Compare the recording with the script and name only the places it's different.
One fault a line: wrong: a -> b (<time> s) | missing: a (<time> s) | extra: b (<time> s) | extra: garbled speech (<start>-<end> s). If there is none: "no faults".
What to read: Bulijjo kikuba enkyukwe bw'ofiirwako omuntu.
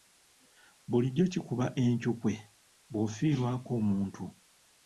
no faults